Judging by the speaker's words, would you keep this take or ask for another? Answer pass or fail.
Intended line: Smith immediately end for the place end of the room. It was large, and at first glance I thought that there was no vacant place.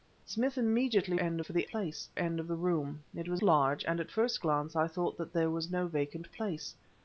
pass